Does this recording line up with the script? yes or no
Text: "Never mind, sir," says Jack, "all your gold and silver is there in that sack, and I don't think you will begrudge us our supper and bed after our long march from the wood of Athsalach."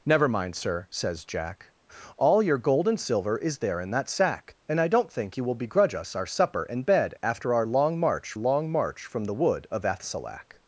no